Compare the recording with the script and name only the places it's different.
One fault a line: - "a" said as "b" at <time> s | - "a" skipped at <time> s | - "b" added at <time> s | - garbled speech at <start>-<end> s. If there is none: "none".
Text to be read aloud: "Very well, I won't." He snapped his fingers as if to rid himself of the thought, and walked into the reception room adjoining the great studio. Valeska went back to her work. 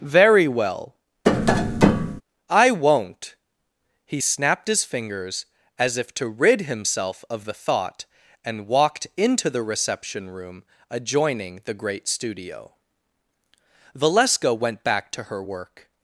none